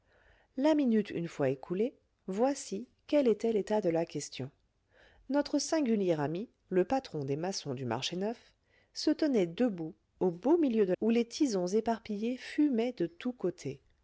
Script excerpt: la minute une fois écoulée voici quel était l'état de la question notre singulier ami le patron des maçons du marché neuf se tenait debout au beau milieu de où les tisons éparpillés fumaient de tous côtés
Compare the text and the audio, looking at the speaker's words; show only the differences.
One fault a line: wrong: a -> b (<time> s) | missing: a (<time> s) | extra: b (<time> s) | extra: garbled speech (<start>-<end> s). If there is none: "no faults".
no faults